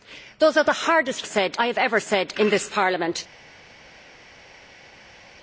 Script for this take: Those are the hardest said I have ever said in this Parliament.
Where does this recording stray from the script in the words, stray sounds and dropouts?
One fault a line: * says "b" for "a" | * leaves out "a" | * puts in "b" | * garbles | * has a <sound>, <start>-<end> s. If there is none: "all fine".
all fine